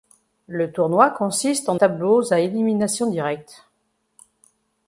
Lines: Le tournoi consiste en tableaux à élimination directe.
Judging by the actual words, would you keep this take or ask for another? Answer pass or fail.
pass